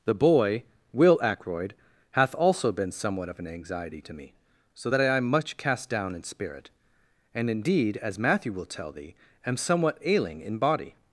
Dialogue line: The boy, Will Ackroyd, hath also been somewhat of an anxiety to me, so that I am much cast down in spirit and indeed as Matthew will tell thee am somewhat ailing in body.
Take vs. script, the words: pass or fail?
pass